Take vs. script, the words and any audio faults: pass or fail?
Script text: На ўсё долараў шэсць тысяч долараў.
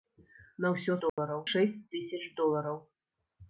fail